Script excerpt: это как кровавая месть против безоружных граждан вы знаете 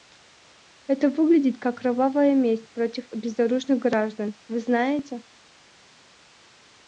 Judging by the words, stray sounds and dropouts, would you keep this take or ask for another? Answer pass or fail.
fail